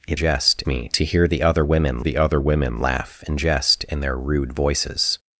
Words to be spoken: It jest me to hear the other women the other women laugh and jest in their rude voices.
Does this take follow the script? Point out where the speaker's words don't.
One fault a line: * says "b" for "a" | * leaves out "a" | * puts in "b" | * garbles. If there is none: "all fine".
all fine